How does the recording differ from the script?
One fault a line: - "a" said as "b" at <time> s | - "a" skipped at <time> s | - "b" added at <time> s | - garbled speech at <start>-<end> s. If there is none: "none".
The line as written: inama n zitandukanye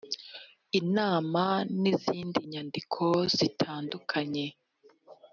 - "izindi nyandiko" added at 1.9 s